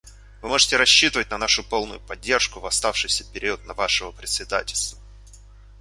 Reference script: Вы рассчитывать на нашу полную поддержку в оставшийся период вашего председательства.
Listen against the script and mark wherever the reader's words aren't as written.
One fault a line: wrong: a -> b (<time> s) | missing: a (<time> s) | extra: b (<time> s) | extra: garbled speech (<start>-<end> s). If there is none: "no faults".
extra: можете (0.5 s)